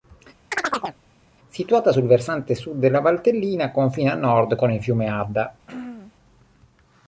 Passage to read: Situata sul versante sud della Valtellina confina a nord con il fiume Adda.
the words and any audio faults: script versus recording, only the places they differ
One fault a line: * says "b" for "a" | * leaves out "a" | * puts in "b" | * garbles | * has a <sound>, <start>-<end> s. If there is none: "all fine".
* has a chirp, 0.5-1.0 s
* has a throat clearing, 5.7-6.1 s